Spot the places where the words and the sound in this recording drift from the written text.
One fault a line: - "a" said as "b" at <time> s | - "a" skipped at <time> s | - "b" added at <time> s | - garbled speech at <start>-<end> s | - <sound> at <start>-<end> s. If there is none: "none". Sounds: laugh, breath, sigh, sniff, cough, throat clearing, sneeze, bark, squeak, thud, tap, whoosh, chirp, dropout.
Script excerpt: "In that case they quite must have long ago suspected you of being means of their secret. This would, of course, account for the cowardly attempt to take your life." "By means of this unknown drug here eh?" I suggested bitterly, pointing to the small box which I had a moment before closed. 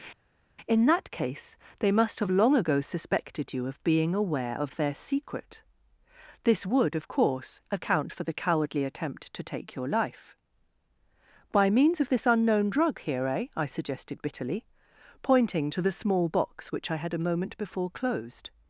- "quite" skipped at 1.9 s
- "means" said as "aware" at 4.1 s